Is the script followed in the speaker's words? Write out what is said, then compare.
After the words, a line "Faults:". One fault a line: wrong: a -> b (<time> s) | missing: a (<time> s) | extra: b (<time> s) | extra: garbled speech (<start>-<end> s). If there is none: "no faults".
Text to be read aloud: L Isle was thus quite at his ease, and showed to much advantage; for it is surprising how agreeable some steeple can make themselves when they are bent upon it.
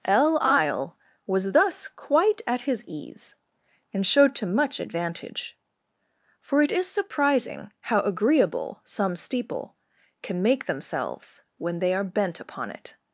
L Isle was thus quite at his ease, and showed to much advantage; for it is surprising how agreeable some steeple can make themselves when they are bent upon it.
Faults:
no faults